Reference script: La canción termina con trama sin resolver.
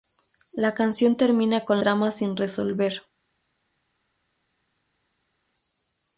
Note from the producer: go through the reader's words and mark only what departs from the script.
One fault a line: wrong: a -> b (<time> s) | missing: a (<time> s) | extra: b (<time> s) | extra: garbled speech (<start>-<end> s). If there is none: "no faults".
no faults